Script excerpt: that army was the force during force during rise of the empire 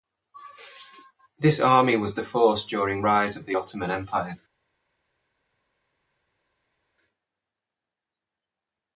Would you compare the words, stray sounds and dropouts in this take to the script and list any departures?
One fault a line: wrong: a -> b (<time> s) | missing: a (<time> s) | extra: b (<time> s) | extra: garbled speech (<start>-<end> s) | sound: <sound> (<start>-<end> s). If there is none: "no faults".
wrong: that -> this (1.4 s)
missing: force during (3.0 s)
extra: ottoman (3.5 s)